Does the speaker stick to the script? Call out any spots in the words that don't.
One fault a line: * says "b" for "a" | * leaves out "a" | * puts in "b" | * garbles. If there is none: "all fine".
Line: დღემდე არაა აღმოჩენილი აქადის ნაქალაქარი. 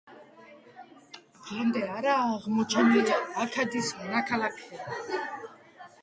all fine